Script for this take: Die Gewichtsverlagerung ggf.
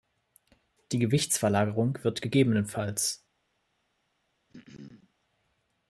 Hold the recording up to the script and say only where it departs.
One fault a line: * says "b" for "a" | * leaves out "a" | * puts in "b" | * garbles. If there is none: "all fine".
* puts in "wird"